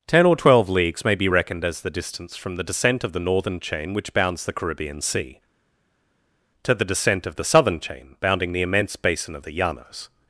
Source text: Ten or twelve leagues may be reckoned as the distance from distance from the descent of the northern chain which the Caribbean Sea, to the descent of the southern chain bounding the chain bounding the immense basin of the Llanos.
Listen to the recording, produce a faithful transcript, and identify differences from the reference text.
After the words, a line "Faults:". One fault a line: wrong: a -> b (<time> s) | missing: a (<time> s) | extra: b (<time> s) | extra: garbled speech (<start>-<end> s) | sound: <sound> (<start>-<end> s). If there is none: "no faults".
Ten or twelve leagues may be reckoned as the distance from the descent of the northern chain which bounds the Caribbean Sea, to the descent of the southern chain bounding the immense basin of the Llanos.
Faults:
missing: distance from (2.5 s)
extra: bounds (4.1 s)
missing: chain bounding the (8.6 s)